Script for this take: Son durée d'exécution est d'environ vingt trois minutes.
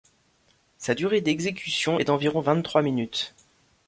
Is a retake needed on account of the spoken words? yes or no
yes